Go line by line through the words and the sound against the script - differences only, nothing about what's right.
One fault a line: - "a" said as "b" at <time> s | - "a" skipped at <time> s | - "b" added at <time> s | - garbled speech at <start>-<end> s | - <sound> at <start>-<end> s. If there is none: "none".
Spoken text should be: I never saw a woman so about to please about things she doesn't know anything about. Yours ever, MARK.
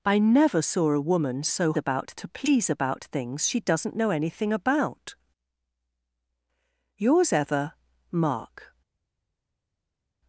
none